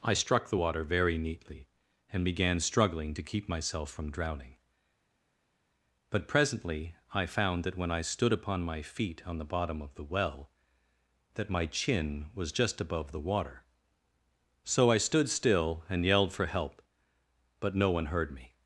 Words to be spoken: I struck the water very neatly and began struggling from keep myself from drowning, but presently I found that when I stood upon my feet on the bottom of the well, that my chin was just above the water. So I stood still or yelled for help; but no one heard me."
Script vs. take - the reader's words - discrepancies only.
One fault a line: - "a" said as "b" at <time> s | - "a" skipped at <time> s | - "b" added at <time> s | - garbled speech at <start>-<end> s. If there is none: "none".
- "from" said as "to" at 3.1 s
- "or" said as "and" at 15.9 s